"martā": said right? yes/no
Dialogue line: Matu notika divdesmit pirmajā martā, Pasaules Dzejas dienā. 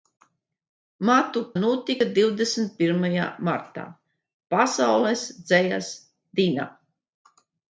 yes